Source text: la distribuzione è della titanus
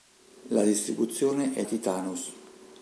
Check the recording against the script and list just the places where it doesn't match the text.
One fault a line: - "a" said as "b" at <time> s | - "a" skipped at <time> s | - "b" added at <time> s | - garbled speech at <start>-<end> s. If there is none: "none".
- "della" skipped at 1.6 s